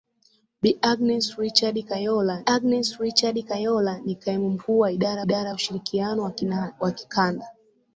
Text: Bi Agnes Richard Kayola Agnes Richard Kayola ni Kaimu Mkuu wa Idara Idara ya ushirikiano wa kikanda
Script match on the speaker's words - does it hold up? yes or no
yes